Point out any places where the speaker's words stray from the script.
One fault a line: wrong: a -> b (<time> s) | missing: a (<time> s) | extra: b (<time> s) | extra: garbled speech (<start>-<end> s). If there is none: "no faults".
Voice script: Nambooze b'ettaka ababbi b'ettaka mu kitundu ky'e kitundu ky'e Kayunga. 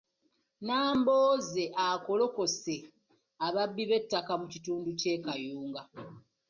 wrong: b'ettaka -> akolokose (1.9 s)
missing: kitundu ky'e (5.1 s)